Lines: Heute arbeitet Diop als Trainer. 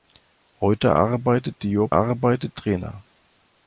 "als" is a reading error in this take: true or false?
true